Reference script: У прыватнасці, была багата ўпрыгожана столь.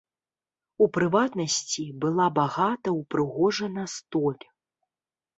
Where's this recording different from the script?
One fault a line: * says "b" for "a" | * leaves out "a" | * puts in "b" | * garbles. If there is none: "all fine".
all fine